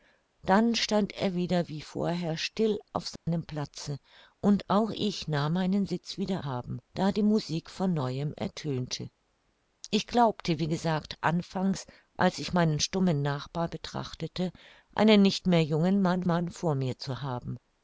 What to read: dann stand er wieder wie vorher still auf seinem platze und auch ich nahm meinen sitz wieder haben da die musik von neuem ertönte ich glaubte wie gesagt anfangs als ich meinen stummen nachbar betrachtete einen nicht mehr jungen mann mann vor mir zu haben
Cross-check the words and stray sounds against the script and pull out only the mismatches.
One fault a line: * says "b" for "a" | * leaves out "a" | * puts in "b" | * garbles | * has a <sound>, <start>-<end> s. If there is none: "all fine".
* has a dropout, 3.2-3.3 s